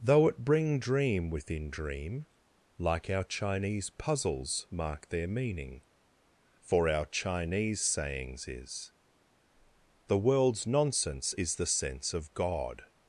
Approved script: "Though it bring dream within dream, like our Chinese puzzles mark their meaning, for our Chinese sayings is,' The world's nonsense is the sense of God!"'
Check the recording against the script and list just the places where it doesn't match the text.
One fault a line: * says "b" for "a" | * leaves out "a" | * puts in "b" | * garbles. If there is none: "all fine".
all fine